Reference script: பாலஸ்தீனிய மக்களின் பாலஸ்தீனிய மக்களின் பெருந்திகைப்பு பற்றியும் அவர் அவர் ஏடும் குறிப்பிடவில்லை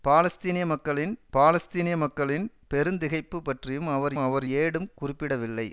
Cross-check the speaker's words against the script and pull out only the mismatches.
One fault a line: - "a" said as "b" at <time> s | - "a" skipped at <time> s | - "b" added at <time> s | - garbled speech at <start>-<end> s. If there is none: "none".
none